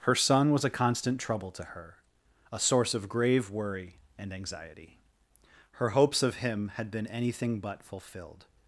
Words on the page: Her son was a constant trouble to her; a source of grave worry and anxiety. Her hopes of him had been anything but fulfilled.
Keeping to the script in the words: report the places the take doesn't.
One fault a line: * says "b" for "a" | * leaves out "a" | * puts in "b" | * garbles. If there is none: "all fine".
all fine